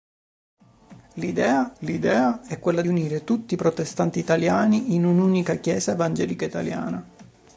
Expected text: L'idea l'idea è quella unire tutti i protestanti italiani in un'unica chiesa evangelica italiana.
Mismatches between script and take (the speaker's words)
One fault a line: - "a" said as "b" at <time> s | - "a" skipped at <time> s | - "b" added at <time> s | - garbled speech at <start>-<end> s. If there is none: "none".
none